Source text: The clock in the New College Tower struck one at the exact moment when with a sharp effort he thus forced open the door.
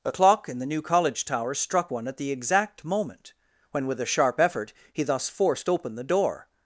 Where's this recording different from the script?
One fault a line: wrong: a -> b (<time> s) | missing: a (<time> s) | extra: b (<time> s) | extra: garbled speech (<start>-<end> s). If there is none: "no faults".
wrong: The -> A (0.0 s)